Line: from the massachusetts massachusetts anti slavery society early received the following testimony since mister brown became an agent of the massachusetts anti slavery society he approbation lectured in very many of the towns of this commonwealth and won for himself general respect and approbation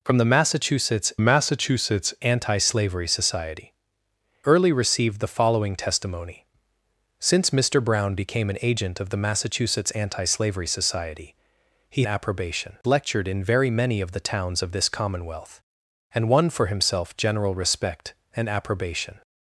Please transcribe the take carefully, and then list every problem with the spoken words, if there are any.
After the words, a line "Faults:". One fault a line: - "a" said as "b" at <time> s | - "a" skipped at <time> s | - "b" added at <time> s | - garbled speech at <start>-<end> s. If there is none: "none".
from the massachusetts massachusetts anti slavery society early received the following testimony since mister brown became an agent of the massachusetts anti slavery society he approbation lectured in very many of the towns of this commonwealth and won for himself general respect and approbation
Faults:
none